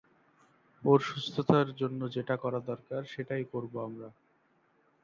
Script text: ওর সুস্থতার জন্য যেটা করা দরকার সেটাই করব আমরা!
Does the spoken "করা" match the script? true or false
true